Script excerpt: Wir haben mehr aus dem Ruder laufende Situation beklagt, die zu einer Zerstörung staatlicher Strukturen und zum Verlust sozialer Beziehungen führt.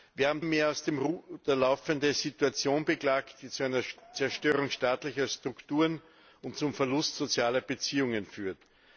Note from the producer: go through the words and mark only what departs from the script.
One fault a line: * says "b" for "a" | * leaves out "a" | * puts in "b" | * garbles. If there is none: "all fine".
all fine